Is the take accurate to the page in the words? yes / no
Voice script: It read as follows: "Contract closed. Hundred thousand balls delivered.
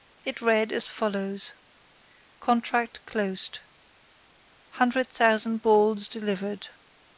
yes